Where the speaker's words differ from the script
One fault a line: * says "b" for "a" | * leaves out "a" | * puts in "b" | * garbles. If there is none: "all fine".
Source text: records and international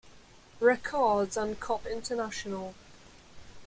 * puts in "cop"